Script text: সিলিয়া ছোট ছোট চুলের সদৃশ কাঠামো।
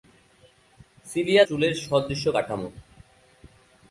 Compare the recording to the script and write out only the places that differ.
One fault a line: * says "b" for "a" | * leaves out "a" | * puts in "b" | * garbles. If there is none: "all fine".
* leaves out "ছোট ছোট"